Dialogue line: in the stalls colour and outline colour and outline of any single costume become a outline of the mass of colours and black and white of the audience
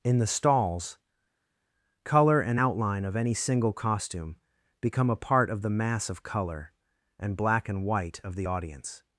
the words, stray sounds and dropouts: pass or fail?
fail